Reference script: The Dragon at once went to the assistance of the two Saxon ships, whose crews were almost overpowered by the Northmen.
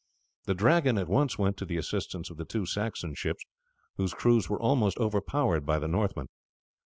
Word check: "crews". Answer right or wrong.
right